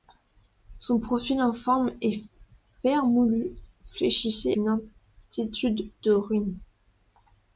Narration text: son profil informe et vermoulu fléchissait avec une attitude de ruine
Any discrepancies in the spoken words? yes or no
yes